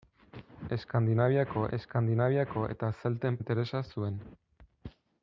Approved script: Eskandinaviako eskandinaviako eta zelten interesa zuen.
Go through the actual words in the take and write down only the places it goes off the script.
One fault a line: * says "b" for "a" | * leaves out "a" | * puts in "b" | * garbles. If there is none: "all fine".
all fine